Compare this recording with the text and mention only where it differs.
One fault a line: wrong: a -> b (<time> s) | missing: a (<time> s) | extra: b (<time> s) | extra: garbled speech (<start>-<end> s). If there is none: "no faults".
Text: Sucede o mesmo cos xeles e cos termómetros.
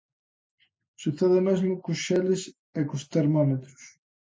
no faults